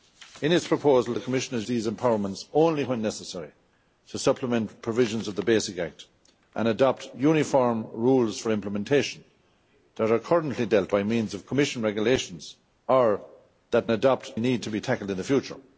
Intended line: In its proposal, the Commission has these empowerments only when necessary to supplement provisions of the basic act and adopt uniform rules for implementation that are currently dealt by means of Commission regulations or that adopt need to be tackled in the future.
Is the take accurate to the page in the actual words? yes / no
yes